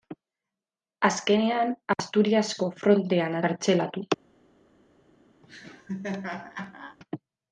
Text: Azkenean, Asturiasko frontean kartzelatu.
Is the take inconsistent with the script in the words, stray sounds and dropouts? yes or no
yes